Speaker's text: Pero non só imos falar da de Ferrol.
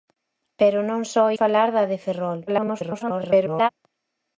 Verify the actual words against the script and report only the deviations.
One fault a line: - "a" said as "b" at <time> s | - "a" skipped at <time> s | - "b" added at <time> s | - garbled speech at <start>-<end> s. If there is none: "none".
- "imos" skipped at 1.2 s
- garbled speech at 2.5-3.7 s